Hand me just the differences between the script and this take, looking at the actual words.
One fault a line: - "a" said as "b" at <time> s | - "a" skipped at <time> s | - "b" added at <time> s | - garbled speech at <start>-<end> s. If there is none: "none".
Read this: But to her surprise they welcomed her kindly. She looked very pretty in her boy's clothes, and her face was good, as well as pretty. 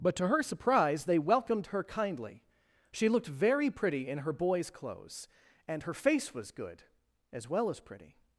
none